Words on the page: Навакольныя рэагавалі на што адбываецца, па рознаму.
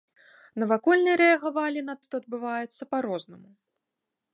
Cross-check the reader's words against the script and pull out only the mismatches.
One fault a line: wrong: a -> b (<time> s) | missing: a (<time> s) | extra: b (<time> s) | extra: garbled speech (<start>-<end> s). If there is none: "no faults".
no faults